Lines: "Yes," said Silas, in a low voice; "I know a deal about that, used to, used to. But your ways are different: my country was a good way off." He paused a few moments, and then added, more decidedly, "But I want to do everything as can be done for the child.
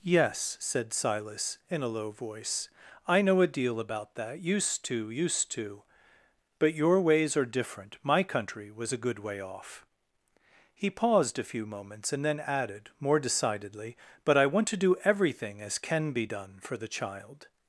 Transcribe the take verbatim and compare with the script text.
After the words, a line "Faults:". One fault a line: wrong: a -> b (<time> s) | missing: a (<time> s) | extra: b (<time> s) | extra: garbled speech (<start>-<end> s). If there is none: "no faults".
"Yes," said Silas, in a low voice; "I know a deal about that, used to, used to. But your ways are different: my country was a good way off." He paused a few moments, and then added, more decidedly, "But I want to do everything as can be done for the child.
Faults:
no faults